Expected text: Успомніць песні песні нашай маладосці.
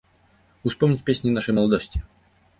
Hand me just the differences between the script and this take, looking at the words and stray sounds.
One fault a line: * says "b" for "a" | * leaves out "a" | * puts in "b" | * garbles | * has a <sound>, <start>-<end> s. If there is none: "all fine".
* leaves out "песні"